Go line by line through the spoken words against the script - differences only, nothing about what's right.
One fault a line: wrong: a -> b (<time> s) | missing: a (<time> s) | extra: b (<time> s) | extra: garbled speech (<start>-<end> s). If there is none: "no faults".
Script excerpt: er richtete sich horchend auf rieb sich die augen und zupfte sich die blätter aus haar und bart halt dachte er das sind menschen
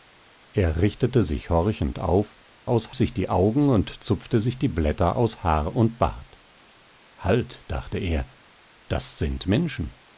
wrong: rieb -> aus (2.7 s)